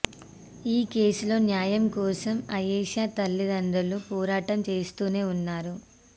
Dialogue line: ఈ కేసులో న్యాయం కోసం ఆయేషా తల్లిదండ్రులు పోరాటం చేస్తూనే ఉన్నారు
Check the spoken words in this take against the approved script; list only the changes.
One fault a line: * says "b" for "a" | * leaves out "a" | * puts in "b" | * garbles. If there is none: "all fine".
all fine